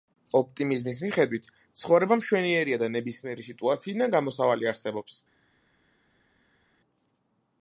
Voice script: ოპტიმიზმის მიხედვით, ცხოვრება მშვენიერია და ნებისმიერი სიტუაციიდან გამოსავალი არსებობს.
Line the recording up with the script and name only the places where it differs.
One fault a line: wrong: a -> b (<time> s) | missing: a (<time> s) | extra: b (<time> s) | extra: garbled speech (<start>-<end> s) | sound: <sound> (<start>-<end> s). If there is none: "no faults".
no faults